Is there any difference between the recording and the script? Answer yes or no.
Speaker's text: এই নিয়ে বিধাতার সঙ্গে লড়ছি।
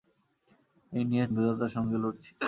no